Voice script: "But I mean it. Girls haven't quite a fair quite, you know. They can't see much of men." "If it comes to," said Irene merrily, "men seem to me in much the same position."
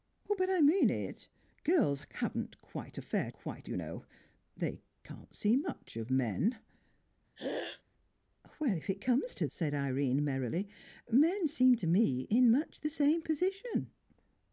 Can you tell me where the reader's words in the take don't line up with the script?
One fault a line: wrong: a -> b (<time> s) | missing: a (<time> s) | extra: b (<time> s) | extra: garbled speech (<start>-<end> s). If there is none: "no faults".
no faults